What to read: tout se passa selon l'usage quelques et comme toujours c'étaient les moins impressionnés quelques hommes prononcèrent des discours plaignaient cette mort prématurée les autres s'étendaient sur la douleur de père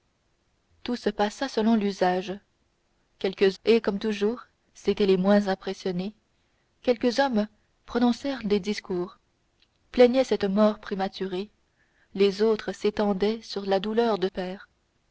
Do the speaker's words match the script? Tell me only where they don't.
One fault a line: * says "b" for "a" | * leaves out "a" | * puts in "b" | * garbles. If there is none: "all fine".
all fine